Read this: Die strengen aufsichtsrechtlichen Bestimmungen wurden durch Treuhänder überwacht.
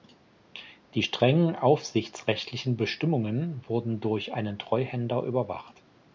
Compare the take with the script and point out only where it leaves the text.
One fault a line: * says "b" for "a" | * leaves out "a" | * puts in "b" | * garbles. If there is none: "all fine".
* puts in "einen"